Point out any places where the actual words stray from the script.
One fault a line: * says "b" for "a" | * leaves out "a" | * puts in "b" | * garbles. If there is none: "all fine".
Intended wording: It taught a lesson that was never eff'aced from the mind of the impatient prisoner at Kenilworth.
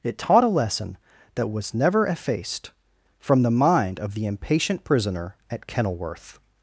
all fine